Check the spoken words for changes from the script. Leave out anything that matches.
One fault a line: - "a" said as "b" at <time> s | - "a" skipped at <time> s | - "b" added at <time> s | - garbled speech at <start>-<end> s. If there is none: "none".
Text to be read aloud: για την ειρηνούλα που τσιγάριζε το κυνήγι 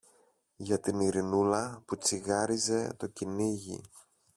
none